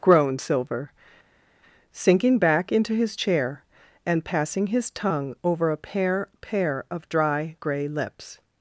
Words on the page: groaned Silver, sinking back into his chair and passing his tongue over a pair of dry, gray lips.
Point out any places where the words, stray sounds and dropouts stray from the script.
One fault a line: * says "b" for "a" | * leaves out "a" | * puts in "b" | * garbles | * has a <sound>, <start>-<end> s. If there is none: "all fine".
* puts in "pair"